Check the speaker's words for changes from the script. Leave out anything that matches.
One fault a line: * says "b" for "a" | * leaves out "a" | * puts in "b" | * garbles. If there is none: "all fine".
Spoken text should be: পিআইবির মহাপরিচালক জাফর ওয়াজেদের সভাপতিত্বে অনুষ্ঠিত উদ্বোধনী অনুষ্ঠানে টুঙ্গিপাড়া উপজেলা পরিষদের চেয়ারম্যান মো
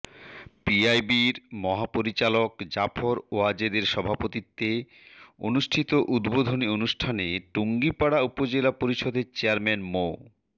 all fine